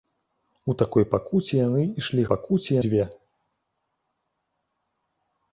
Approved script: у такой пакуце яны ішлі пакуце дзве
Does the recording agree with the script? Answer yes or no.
yes